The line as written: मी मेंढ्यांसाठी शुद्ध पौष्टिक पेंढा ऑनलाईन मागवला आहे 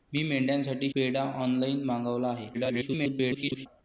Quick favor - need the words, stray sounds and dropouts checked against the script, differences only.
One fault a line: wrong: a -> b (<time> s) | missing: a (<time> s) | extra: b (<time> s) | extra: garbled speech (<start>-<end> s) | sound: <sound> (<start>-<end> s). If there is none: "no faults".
missing: शुद्ध पौष्टिक (0.9 s)
extra: garbled speech (2.5-3.7 s)